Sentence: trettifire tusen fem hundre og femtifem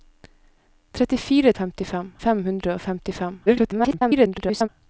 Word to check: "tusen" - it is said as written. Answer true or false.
false